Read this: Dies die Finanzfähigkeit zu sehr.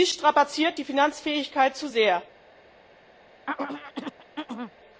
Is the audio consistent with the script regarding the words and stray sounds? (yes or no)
no